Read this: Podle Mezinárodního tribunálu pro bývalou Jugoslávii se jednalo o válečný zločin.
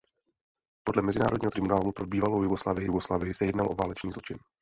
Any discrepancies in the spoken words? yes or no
yes